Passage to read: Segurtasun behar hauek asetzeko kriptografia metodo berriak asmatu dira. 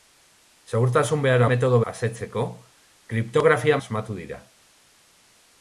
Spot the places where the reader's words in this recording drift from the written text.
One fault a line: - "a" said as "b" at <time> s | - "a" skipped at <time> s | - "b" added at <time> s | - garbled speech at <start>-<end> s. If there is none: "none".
- "hauek" said as "metodo" at 1.5 s
- "metodo berriak" skipped at 3.8 s